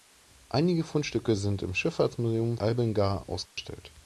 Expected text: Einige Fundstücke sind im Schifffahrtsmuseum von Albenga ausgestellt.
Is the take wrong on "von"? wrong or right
wrong